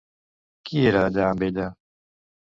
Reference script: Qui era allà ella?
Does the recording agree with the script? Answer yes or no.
no